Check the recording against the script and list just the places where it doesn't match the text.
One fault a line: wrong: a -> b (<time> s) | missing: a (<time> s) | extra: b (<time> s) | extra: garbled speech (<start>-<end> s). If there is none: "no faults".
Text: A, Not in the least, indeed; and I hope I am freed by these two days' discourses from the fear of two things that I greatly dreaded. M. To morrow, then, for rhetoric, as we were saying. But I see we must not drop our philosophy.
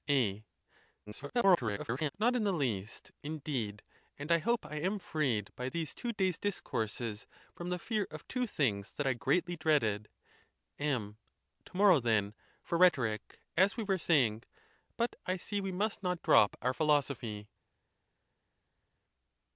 extra: garbled speech (1.1-2.1 s)